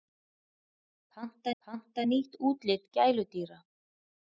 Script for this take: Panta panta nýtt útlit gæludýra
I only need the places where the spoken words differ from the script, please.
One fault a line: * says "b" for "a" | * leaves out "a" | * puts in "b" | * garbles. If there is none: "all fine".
all fine